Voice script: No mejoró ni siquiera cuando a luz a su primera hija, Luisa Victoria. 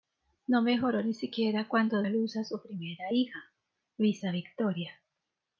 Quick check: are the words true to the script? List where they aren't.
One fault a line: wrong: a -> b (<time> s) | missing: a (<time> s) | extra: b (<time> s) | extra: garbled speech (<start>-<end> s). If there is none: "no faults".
no faults